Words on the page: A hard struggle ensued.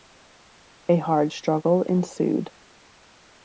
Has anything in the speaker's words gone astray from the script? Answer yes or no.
no